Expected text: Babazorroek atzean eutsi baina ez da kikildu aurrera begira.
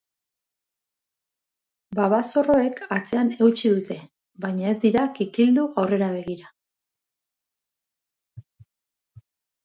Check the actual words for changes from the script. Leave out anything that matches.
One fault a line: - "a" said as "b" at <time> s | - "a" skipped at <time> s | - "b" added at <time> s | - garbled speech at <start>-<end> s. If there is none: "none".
- "dute" added at 3.7 s
- "da" said as "dira" at 4.8 s